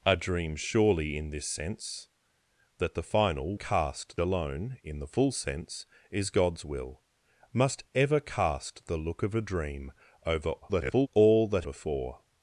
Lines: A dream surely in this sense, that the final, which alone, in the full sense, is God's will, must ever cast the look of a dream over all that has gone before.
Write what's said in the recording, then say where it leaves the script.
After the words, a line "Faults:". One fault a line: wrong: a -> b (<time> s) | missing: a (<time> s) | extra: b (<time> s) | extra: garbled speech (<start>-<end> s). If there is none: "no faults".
A dream surely in this sense, that the final, cast alone, in the full sense, is God's will, must ever cast the look of a dream over [garbled] all that before.
Faults:
wrong: which -> cast (3.5 s)
extra: garbled speech (10.6-11.1 s)
missing: has gone (11.7 s)